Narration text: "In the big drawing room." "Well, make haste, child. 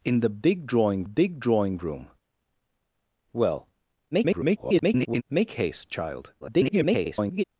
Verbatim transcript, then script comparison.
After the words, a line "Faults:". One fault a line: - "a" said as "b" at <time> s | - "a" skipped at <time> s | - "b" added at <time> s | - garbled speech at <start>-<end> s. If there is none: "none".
"In the big drawing big drawing room." "Well, [garbled] make haste, child. [garbled]
Faults:
- "big drawing" added at 1.0 s
- garbled speech at 4.1-5.2 s
- garbled speech at 6.4-7.4 s